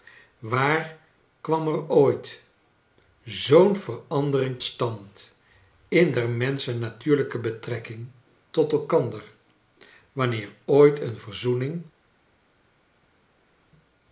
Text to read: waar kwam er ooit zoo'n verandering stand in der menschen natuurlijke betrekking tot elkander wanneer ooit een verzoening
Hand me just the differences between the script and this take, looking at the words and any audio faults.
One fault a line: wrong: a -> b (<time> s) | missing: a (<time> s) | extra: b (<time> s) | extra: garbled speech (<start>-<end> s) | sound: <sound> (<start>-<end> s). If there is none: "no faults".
no faults